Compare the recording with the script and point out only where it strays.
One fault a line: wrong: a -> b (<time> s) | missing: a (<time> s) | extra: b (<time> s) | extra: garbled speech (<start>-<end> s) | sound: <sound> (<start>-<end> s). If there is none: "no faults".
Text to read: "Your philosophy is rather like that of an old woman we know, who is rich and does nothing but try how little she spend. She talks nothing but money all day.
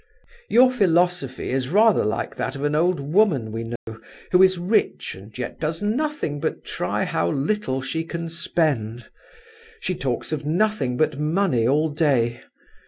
sound: dropout (3.8-3.9 s)
extra: yet (5.4 s)
extra: can (8.0 s)
extra: of (10.3 s)